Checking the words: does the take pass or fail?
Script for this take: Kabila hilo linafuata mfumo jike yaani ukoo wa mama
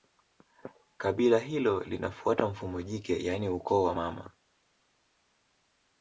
pass